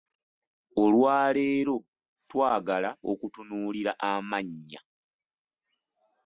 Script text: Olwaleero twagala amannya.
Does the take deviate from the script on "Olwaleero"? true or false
false